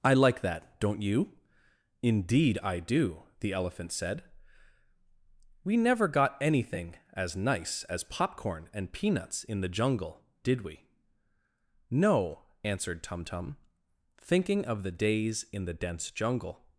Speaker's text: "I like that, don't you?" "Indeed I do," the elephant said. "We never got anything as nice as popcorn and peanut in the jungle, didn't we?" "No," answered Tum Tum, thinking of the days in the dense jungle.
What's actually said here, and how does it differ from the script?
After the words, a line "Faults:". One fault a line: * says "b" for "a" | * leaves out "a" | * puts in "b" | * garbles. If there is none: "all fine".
"I like that, don't you?" "Indeed I do," the elephant said. "We never got anything as nice as popcorn and peanuts in the jungle, did we?" "No," answered Tum Tum, thinking of the days in the dense jungle.
Faults:
* says "peanuts" for "peanut"
* says "did" for "didn't"